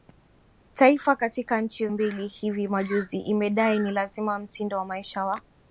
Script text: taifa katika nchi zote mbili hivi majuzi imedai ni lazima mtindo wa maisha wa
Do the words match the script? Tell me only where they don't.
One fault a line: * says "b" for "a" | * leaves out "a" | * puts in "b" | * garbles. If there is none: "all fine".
* leaves out "zote"